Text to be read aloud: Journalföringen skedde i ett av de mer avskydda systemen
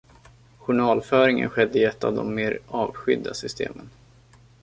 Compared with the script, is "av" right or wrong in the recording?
right